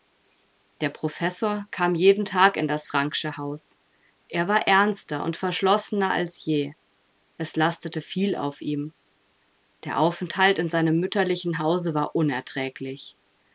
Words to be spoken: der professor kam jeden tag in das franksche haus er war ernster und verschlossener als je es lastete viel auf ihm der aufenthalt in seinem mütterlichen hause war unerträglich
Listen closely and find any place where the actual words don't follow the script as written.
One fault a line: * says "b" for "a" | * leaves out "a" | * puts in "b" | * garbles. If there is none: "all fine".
all fine